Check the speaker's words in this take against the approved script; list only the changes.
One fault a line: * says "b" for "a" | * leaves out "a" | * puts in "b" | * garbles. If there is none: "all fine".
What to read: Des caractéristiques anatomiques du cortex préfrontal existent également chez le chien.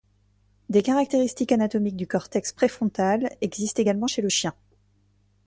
all fine